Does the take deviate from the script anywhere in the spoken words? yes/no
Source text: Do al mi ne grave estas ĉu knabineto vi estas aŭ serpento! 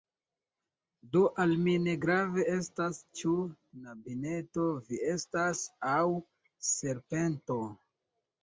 no